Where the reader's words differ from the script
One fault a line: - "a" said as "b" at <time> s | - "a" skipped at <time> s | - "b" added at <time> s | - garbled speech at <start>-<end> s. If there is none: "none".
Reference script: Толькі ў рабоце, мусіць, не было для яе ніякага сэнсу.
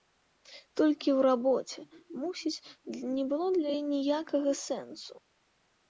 none